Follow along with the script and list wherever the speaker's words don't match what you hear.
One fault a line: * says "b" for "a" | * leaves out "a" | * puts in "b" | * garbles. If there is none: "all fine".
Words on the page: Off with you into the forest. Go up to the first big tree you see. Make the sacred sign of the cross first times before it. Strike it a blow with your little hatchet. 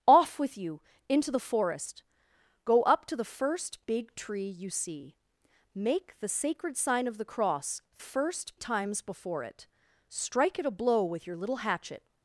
all fine